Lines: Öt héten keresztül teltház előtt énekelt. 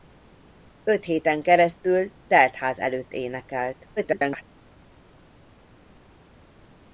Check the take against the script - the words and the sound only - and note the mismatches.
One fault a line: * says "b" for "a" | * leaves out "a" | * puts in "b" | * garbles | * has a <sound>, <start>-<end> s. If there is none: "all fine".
* garbles